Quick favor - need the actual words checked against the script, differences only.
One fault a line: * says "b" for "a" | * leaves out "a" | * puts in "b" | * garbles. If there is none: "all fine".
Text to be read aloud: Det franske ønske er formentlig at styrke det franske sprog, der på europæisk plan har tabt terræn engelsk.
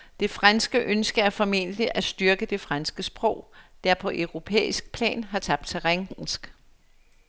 all fine